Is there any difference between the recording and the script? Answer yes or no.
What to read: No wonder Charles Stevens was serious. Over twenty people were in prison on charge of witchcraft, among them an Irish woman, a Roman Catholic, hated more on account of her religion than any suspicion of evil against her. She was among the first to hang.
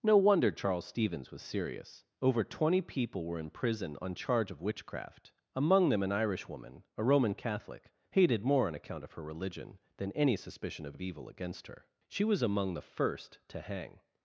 yes